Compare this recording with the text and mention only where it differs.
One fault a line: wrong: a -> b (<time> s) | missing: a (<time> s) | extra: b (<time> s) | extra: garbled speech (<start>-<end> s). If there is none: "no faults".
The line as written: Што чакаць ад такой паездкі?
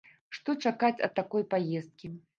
no faults